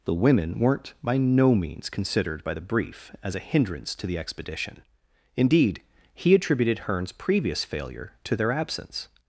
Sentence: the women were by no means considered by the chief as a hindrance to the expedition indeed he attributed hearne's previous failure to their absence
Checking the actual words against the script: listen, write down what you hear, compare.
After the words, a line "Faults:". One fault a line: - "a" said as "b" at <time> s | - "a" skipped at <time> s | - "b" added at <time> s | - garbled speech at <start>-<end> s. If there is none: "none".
the women weren't by no means considered by the brief as a hindrance to the expedition indeed he attributed hearne's previous failure to their absence
Faults:
- "were" said as "weren't" at 0.6 s
- "chief" said as "brief" at 2.6 s